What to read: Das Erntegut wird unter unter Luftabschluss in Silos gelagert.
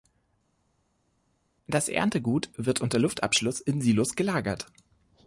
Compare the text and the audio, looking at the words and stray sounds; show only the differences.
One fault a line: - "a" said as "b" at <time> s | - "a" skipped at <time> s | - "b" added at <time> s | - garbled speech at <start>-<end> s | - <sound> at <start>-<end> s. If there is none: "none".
- "unter" skipped at 3.0 s